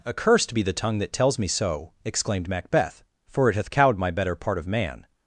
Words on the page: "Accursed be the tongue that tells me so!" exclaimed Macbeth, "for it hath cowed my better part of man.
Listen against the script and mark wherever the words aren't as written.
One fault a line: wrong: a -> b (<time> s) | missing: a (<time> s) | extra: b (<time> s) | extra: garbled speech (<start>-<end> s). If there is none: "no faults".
no faults